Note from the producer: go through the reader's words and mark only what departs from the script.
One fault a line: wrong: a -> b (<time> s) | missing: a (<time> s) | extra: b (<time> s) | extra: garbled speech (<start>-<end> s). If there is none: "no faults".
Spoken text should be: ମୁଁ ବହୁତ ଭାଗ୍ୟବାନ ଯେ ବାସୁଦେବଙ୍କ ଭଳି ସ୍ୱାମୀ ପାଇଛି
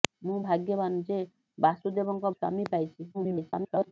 missing: ବହୁତ (0.4 s)
missing: ଭଳି (2.3 s)
extra: garbled speech (3.1-3.9 s)